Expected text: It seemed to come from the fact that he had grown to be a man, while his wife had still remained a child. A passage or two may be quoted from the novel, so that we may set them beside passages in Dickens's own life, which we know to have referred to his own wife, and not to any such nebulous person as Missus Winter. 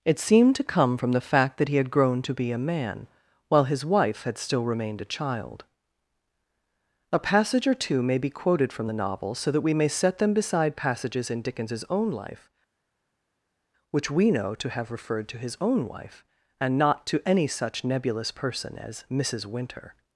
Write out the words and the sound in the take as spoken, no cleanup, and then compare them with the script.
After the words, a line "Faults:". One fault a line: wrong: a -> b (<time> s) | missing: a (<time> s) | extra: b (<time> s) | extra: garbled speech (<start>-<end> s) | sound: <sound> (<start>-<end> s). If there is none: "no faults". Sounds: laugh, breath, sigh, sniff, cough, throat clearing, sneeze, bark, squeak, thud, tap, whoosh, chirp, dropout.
It seemed to come from the fact that he had grown to be a man, while his wife had still remained a child. A passage or two may be quoted from the novel, so that we may set them beside passages in Dickens's own life, which we know to have referred to his own wife, and not to any such nebulous person as Missus Winter.
Faults:
no faults